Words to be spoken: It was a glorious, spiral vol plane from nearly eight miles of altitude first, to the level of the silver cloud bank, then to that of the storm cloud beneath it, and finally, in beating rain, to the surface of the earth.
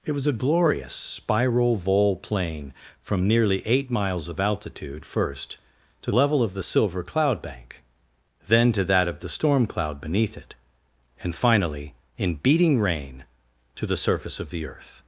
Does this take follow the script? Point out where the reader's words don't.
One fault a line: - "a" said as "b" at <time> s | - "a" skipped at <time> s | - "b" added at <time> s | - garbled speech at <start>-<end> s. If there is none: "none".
- "the" skipped at 6.1 s